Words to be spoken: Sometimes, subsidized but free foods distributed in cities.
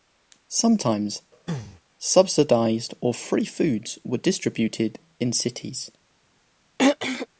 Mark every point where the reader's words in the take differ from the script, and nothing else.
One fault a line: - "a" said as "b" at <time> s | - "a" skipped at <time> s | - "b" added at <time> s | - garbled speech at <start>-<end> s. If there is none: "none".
- "but" said as "or" at 3.0 s
- "were" added at 4.0 s